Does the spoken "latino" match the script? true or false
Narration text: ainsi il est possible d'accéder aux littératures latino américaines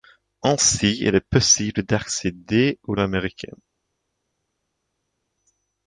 false